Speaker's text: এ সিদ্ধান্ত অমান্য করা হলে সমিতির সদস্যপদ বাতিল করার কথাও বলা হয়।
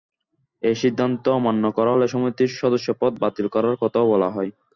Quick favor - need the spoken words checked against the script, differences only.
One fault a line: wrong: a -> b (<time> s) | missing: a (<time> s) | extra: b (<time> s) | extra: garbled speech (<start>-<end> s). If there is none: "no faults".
no faults